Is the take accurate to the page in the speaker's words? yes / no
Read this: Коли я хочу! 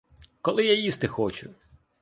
no